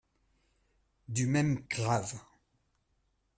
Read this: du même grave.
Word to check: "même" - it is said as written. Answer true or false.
true